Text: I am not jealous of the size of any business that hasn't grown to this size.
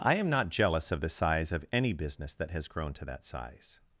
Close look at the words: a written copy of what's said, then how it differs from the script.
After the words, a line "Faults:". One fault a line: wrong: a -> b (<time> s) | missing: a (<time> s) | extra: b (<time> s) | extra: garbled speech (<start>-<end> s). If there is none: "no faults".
I am not jealous of the size of any business that has grown to that size.
Faults:
wrong: hasn't -> has (2.5 s)
wrong: this -> that (3.0 s)